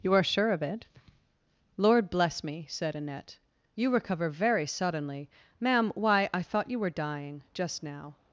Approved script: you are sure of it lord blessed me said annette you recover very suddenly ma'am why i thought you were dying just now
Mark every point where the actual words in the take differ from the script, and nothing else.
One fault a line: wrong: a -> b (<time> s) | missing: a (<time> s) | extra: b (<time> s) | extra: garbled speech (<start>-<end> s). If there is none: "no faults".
wrong: blessed -> bless (2.1 s)